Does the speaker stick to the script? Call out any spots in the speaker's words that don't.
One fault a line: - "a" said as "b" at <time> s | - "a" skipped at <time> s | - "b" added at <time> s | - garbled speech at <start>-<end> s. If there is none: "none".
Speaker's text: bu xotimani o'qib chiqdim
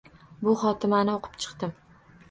none